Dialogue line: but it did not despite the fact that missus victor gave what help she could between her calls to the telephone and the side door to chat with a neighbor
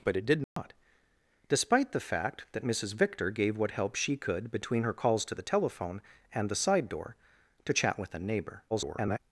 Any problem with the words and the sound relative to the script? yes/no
yes